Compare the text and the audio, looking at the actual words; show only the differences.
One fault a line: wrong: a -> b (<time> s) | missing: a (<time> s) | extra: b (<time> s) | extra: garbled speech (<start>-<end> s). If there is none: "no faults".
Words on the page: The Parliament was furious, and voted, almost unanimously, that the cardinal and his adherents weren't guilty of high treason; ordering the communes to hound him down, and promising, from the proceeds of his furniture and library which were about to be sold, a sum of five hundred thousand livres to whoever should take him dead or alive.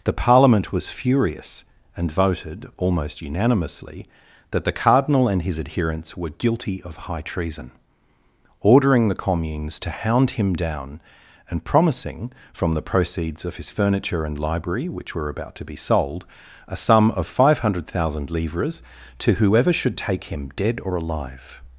wrong: weren't -> were (6.2 s)